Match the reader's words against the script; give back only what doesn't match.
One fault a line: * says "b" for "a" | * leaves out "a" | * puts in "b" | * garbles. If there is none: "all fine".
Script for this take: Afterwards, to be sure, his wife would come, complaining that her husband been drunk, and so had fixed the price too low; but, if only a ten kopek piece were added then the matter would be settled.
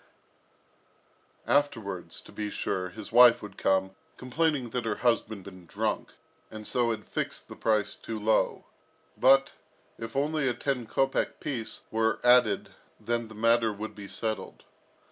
all fine